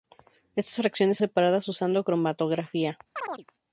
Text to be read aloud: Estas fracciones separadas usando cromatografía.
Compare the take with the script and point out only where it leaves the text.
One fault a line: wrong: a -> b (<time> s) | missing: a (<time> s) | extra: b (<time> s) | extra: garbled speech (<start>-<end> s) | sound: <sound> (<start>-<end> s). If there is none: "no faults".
sound: chirp (3.2-3.5 s)